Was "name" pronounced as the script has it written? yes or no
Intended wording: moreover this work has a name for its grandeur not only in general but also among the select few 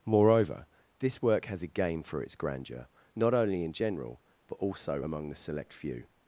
no